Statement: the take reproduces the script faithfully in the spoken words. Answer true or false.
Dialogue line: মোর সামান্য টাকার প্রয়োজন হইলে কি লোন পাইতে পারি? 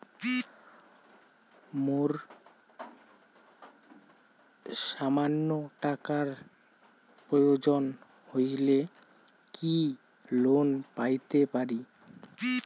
true